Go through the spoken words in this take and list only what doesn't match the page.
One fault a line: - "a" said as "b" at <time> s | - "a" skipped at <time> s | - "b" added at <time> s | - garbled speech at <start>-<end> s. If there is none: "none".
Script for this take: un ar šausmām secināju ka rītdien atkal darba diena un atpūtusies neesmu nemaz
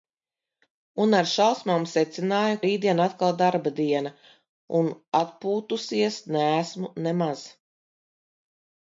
- "ka" skipped at 2.6 s